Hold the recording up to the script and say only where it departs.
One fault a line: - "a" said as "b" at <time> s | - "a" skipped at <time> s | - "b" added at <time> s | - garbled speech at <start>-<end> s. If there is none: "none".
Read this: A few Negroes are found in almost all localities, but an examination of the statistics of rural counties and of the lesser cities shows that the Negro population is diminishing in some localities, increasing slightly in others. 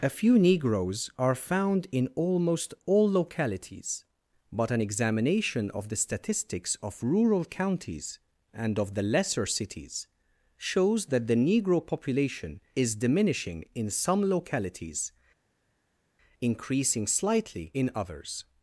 none